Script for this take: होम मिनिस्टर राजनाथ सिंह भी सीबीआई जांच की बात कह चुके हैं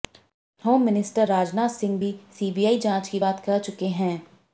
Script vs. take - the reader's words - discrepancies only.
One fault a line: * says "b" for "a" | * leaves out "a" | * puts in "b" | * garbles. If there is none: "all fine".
all fine